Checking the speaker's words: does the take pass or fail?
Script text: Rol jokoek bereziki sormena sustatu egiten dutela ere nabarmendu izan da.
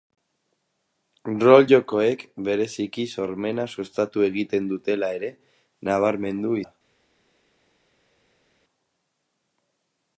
fail